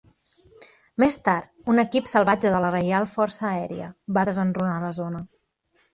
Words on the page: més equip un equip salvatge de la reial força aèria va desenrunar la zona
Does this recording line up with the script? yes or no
no